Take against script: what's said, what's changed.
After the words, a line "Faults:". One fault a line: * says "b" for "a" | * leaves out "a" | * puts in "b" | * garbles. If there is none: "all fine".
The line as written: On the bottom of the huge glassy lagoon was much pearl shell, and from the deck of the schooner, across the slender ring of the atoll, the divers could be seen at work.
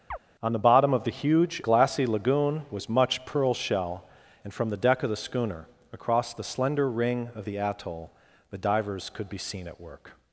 On the bottom of the huge glassy lagoon was much pearl shell, and from the deck of the schooner, across the slender ring of the atoll, the divers could be seen at work.
Faults:
all fine